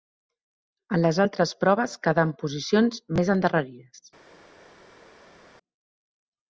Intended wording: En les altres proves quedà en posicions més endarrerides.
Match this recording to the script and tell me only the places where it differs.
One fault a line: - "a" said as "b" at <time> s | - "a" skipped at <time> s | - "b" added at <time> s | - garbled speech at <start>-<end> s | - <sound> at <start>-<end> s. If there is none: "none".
none